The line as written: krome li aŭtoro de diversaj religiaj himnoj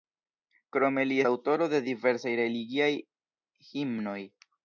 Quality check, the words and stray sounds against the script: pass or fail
pass